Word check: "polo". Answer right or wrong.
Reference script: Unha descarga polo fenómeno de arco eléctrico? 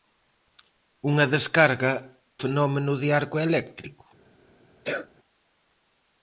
wrong